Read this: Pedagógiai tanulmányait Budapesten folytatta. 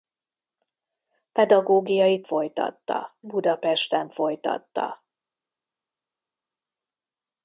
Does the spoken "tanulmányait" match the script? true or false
false